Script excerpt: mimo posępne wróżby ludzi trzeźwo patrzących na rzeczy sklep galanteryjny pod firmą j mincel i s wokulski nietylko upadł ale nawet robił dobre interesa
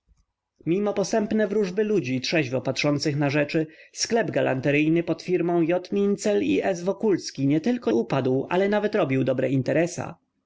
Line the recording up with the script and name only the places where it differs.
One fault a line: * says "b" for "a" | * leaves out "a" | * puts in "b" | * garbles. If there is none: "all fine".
all fine